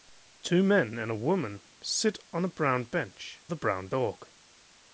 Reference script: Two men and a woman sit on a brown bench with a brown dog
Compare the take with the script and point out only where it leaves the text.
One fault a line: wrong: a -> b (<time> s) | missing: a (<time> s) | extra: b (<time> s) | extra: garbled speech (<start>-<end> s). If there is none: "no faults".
missing: with (3.4 s)